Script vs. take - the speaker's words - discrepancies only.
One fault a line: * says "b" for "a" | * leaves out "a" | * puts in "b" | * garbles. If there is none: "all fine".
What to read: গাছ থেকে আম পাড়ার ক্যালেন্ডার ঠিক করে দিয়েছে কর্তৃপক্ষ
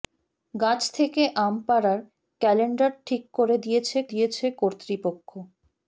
* puts in "দিয়েছে"